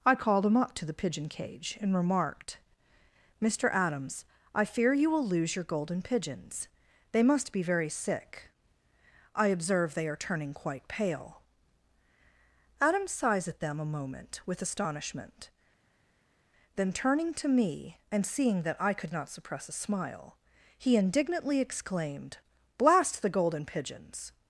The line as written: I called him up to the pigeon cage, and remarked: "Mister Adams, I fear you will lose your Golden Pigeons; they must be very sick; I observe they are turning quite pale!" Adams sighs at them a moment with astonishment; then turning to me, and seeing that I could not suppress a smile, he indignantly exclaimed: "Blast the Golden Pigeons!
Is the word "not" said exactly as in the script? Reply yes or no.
yes